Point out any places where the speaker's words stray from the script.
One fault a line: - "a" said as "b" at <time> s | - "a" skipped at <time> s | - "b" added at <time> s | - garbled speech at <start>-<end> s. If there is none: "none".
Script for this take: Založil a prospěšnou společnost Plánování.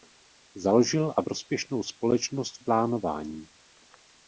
none